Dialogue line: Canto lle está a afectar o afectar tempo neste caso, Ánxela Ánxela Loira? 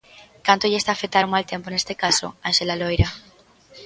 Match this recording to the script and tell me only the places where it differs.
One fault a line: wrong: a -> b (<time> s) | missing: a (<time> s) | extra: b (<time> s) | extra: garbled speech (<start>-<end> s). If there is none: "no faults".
wrong: afectar -> mal (1.3 s)
missing: Ánxela (2.8 s)